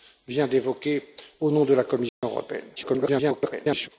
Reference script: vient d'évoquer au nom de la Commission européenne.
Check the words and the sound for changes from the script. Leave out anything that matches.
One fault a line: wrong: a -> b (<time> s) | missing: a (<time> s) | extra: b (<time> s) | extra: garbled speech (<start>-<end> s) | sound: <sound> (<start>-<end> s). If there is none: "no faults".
sound: dropout (2.1-2.2 s)
extra: garbled speech (2.8-3.9 s)